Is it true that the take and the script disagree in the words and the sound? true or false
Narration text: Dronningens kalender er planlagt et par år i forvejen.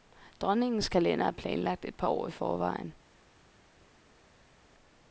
false